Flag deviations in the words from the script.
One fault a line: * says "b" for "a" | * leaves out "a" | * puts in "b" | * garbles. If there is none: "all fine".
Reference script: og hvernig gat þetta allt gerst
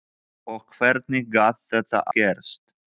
* leaves out "allt"